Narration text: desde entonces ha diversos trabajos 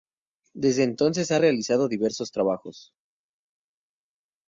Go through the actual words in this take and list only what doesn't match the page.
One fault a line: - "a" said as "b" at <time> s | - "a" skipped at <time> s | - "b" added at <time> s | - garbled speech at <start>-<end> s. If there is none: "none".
- "realizado" added at 1.4 s